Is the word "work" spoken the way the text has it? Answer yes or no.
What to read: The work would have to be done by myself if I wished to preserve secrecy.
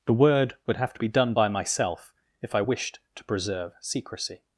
no